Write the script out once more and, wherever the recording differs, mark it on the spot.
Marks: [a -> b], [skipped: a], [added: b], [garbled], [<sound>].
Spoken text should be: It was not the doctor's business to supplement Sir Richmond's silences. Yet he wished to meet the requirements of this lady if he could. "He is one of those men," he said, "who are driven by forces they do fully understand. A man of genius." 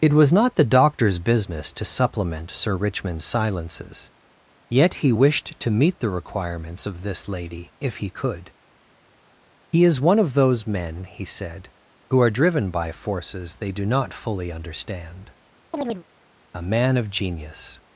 It was not the doctor's business to supplement Sir Richmond's silences. Yet he wished to meet the requirements of this lady if he could. "He is one of those men," he said, "who are driven by forces they do [added: not] fully understand. [chirp] A man of genius."